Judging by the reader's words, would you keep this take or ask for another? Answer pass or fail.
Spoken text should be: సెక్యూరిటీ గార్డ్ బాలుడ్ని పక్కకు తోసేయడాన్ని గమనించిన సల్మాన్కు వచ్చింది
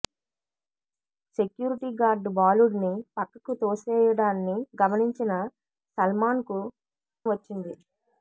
pass